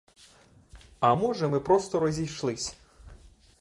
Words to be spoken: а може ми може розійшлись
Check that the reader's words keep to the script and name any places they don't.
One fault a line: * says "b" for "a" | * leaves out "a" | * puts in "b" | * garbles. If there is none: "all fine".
* says "просто" for "може"